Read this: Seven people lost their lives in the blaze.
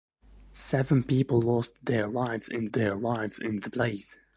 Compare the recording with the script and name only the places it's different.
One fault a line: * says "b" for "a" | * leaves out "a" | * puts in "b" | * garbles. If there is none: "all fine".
* puts in "their lives in"